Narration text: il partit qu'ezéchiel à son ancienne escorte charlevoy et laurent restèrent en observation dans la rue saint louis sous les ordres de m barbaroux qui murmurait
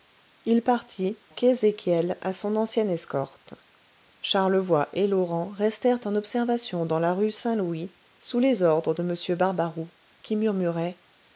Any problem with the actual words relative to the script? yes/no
no